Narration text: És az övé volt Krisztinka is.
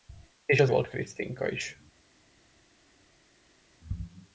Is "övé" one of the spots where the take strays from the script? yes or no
yes